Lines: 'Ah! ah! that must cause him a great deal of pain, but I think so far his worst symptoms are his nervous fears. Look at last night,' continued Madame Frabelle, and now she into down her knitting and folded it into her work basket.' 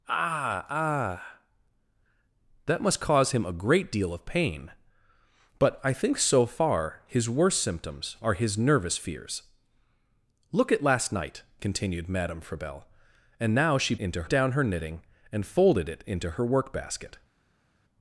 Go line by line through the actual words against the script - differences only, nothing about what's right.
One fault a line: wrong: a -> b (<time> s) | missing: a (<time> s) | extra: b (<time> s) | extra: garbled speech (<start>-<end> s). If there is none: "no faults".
no faults